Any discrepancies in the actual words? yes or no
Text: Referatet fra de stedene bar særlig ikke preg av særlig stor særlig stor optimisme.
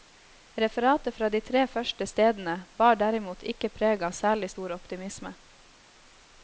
yes